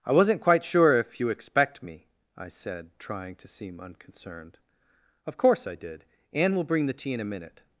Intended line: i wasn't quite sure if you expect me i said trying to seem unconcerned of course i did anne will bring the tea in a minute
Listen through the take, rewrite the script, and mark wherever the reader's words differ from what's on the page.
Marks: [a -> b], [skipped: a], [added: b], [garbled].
i wasn't quite sure if you expect me i said trying to seem unconcerned of course i did anne will bring the tea in a minute